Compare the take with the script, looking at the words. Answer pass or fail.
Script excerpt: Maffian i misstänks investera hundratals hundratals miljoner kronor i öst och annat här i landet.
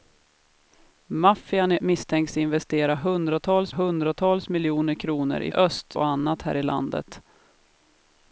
pass